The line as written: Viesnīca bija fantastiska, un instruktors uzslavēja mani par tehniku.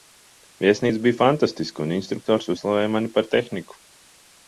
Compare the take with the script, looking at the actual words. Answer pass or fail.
pass